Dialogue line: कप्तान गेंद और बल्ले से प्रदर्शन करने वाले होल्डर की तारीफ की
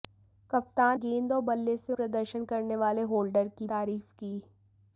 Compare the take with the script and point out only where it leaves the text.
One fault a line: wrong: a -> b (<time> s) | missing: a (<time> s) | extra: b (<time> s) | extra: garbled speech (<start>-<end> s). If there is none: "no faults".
no faults